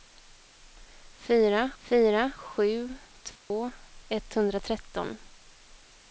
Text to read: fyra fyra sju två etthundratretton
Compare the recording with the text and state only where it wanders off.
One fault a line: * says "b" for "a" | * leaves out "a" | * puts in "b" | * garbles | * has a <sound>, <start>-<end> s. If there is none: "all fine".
* has a dropout, 3.4-3.5 s